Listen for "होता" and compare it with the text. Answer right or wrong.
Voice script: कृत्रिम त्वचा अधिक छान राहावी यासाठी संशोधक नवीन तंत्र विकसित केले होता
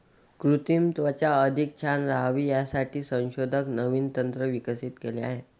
wrong